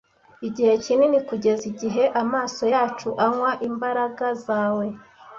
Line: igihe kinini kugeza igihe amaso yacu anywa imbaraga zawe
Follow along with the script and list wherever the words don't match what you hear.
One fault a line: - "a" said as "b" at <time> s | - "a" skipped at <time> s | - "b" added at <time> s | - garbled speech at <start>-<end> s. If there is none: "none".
none